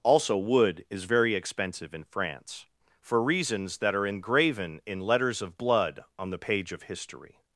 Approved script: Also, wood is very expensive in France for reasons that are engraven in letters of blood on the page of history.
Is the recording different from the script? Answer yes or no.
no